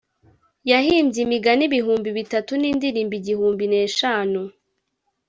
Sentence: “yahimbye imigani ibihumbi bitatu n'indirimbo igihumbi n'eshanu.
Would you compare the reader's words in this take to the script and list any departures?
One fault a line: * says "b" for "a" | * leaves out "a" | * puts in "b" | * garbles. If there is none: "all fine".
all fine